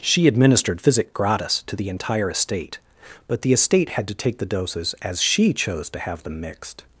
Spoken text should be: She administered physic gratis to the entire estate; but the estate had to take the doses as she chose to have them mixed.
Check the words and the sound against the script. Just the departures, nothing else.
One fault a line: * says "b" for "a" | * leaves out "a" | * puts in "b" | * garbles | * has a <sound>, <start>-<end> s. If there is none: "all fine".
all fine